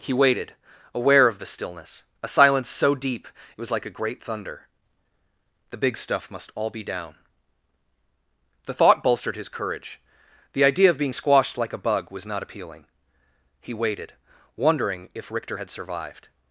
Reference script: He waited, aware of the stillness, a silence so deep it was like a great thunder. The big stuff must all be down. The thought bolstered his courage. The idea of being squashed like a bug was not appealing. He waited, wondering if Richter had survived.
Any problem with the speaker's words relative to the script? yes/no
no